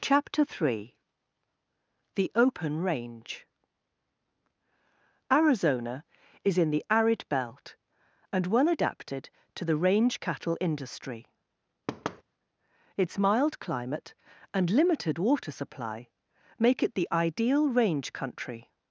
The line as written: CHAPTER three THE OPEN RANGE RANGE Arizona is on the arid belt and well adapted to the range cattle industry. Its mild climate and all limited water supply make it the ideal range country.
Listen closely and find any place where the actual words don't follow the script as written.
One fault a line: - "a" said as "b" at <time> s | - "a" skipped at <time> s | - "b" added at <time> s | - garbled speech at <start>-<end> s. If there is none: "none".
- "RANGE" skipped at 3.5 s
- "on" said as "in" at 6.6 s
- "all" skipped at 14.7 s